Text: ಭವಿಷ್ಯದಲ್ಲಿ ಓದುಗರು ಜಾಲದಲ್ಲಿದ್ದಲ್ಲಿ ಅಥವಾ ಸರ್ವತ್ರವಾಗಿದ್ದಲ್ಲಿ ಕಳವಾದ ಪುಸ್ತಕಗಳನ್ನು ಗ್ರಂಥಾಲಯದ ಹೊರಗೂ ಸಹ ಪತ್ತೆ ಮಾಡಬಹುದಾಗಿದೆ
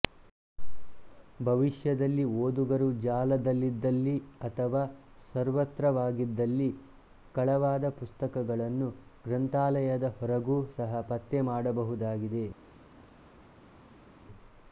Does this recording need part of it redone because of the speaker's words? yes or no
no